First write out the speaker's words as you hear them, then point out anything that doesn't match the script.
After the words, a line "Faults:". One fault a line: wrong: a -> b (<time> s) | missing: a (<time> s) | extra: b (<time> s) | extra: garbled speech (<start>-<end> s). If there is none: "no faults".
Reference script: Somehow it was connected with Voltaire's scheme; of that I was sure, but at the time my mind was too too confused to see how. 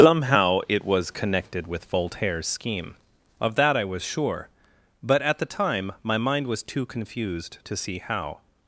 Somehow it was connected with Voltaire's scheme; of that I was sure, but at the time my mind was too confused to see how.
Faults:
missing: too (6.9 s)